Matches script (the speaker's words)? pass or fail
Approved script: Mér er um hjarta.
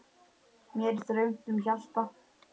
fail